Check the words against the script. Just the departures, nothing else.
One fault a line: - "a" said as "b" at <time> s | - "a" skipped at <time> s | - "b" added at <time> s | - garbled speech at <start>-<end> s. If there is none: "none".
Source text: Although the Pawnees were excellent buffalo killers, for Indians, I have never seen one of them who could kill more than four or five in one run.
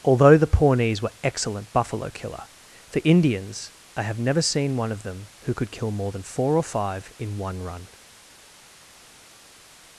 - "killers" said as "killer" at 2.1 s